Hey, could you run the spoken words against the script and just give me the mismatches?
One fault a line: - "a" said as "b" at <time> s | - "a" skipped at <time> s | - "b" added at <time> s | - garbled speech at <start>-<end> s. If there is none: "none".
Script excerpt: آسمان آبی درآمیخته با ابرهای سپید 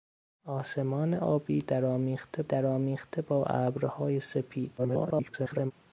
- "درآمیخته" added at 2.4 s
- garbled speech at 4.8-5.7 s